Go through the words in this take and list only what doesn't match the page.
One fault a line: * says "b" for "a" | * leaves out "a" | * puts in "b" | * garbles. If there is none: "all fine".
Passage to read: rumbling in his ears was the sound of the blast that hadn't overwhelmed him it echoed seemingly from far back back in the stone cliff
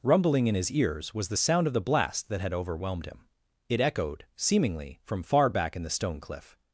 * says "had" for "hadn't"
* leaves out "back"